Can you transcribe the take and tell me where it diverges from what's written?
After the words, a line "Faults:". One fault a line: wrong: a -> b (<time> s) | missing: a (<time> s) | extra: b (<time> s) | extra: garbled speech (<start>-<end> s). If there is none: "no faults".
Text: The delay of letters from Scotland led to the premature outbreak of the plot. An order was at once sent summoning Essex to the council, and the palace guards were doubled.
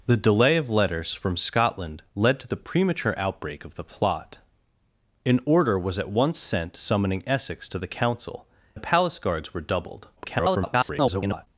The delay of letters from Scotland led to the premature outbreak of the plot. An order was at once sent summoning Essex to the council, the palace guards were doubled. [garbled]
Faults:
missing: and (8.5 s)
extra: garbled speech (10.2-11.5 s)